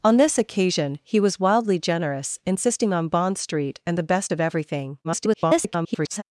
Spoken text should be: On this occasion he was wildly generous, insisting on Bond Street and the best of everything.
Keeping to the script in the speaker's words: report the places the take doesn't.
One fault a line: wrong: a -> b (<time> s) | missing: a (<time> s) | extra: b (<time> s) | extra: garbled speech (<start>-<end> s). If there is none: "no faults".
extra: garbled speech (5.0-6.2 s)